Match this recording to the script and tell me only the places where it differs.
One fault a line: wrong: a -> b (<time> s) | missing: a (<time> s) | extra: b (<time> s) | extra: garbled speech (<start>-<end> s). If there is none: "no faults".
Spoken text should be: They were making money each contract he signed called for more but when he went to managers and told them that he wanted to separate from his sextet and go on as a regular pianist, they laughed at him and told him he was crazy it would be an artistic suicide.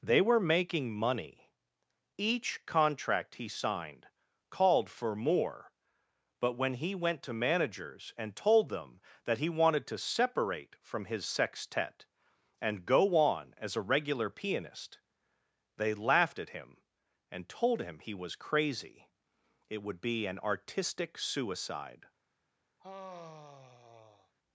no faults